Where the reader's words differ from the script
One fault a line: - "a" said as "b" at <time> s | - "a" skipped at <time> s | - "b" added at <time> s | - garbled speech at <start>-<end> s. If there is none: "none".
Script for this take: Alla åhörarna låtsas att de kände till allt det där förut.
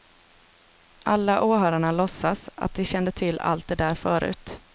none